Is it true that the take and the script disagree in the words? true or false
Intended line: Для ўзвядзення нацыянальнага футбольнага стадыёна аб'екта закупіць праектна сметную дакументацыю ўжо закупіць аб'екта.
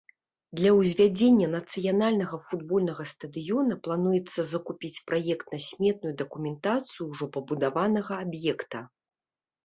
true